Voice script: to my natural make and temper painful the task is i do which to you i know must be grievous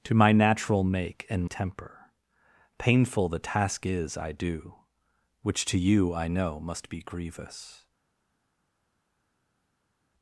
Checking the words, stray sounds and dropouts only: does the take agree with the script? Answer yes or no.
yes